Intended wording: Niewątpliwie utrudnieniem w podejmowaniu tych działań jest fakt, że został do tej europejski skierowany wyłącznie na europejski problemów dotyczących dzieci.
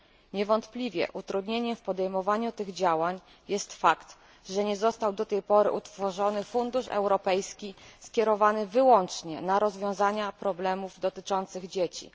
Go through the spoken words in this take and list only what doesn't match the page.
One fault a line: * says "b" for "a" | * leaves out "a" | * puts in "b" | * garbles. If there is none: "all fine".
* puts in "nie"
* puts in "pory utworzony fundusz"
* says "rozwiązanie" for "europejski"